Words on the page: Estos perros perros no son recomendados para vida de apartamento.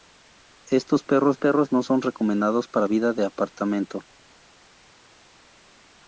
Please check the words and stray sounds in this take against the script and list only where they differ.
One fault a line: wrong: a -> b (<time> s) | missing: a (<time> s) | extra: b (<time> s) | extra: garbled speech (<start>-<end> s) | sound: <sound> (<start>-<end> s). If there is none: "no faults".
no faults